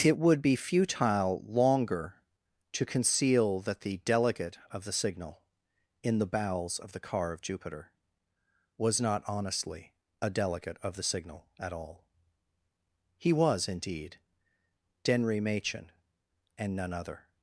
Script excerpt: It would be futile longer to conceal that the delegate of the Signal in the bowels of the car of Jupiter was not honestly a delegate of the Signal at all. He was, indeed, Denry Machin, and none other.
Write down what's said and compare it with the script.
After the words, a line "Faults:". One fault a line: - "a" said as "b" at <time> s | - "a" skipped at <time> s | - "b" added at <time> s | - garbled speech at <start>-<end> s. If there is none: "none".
It would be futile longer to conceal that the delegate of the Signal in the bowels of the car of Jupiter was not honestly a delegate of the Signal at all. He was, indeed, Denry Machin, and none other.
Faults:
none